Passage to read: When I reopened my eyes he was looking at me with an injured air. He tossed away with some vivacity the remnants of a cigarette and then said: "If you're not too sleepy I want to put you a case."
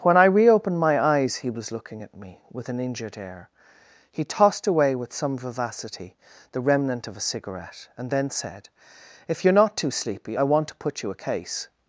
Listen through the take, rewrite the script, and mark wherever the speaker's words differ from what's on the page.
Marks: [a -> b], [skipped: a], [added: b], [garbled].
When I reopened my eyes he was looking at me with an injured air. He tossed away with some vivacity the [remnants -> remnant] of a cigarette and then said: "If you're not too sleepy I want to put you a case."